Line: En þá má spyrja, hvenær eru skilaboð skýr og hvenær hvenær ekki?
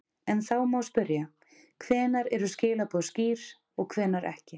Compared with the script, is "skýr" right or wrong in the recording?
right